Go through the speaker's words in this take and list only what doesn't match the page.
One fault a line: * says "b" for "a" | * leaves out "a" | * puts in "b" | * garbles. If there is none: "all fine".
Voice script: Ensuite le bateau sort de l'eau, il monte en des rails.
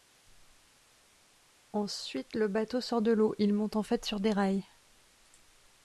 * puts in "fait sur"